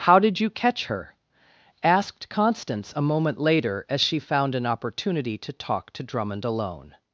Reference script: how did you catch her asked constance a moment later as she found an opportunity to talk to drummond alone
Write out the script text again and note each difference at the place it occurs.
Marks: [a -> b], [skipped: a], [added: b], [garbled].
how did you catch her asked constance a moment later as she found an opportunity to talk to drummond alone